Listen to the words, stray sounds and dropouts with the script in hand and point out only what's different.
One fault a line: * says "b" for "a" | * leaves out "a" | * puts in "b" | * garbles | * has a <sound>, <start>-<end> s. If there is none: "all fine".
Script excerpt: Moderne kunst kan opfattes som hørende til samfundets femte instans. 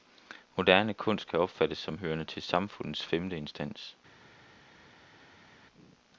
all fine